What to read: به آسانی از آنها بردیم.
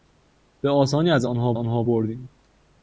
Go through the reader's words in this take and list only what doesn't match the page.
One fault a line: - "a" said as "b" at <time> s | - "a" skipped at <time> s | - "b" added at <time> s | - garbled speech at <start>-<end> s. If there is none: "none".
- "آنها" added at 1.5 s